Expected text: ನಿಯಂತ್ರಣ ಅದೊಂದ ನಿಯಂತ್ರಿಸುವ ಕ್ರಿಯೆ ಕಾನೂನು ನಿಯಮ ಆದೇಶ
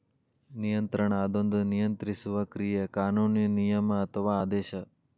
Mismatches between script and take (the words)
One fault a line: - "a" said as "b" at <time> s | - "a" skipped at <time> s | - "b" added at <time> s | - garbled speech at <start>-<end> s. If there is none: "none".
- "ಅಥವಾ" added at 4.0 s